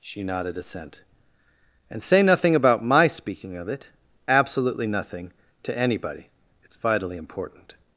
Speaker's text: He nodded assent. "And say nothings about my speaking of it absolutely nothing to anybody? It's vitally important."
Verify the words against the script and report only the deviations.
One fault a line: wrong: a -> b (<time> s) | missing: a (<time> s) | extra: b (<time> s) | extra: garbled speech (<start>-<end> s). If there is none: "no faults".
wrong: He -> She (0.0 s)
wrong: nothings -> nothing (2.2 s)